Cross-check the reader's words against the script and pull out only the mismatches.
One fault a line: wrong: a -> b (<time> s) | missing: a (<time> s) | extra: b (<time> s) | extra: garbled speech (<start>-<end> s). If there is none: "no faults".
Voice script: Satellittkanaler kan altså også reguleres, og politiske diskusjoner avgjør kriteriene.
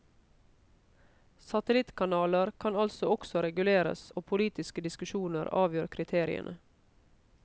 no faults